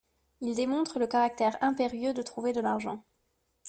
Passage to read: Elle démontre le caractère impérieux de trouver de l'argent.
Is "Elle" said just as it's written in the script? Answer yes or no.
no